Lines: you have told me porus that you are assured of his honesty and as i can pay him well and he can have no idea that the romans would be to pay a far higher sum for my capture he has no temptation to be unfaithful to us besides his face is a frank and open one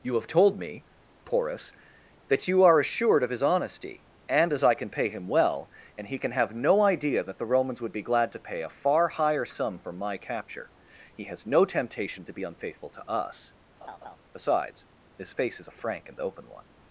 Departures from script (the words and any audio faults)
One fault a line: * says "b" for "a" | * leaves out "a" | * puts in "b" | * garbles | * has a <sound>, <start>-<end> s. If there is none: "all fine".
* puts in "glad"
* has a laugh, 13.8-14.2 s